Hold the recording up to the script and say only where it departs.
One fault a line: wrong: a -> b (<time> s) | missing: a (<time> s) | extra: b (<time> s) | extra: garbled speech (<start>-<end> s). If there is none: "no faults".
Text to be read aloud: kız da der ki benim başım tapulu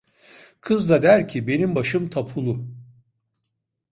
no faults